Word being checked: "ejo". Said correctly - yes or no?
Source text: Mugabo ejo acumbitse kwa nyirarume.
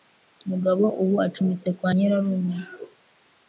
no